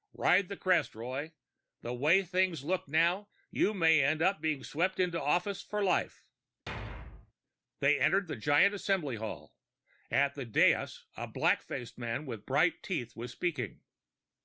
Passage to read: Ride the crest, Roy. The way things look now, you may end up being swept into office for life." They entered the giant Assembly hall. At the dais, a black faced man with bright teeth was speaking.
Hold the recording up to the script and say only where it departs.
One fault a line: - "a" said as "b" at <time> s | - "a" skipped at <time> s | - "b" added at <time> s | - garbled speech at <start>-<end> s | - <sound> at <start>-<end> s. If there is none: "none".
- thud at 6.7-7.3 s